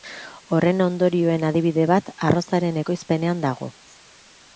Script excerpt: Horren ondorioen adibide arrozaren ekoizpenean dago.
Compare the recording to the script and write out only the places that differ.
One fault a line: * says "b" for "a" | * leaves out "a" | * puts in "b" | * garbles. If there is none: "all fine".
* puts in "bat"